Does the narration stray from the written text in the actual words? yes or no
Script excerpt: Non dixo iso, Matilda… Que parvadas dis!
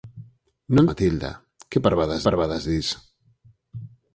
yes